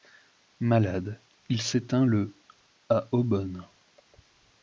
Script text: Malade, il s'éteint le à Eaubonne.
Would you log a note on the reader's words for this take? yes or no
no